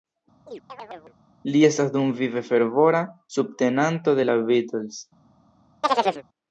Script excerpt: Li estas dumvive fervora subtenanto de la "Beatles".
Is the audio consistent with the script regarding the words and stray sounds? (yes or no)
no